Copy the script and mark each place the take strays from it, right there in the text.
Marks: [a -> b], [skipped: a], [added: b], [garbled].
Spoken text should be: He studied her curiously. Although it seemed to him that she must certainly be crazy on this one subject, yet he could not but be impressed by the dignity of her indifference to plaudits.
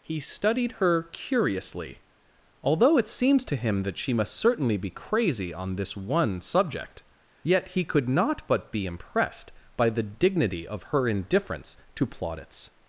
He studied her curiously. Although it [seemed -> seems] to him that she must certainly be crazy on this one subject, yet he could not but be impressed by the dignity of her indifference to plaudits.